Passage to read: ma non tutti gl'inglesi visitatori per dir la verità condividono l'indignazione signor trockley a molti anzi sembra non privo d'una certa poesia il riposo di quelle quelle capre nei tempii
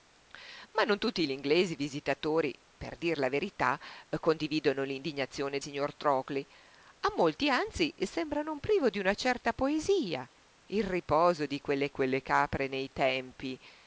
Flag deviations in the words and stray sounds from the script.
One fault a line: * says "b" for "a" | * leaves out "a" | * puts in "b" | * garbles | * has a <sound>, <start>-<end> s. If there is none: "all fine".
all fine